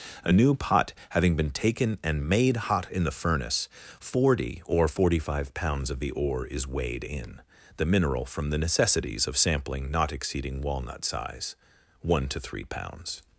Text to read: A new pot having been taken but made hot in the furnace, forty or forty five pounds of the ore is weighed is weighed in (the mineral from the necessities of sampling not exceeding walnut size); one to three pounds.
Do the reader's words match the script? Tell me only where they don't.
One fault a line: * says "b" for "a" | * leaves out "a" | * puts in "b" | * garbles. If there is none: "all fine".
* says "and" for "but"
* leaves out "is weighed"